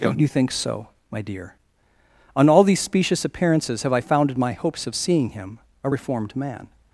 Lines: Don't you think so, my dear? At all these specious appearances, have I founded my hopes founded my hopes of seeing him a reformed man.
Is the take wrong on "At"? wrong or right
wrong